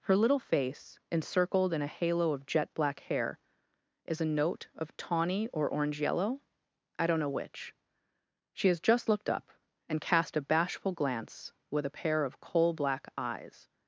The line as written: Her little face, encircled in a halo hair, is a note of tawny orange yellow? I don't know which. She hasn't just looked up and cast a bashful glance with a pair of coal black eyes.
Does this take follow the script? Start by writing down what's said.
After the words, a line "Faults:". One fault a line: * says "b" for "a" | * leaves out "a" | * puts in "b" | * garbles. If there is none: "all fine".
Her little face, encircled in a halo of jet black hair, is a note of tawny or orange yellow? I don't know which. She has just looked up and cast a bashful glance with a pair of coal black eyes.
Faults:
* puts in "of jet black"
* puts in "or"
* says "has" for "hasn't"